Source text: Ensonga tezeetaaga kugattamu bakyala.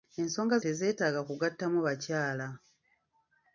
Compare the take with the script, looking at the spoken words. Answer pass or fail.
pass